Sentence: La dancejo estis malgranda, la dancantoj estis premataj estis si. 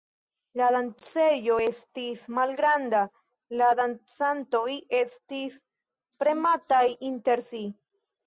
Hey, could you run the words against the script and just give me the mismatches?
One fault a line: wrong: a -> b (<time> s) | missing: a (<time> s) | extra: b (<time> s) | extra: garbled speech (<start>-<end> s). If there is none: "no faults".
wrong: estis -> inter (7.1 s)